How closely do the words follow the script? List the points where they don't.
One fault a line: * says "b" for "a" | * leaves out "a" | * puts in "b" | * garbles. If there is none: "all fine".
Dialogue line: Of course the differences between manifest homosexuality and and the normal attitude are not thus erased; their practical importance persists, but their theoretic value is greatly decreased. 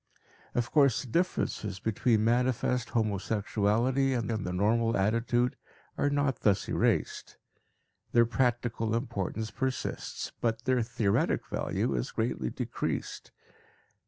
all fine